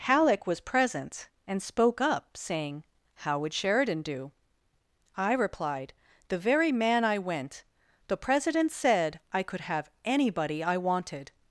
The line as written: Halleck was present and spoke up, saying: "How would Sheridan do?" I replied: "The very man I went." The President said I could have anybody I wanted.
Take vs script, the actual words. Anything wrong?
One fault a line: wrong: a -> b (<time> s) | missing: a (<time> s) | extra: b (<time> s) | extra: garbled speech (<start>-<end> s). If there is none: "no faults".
no faults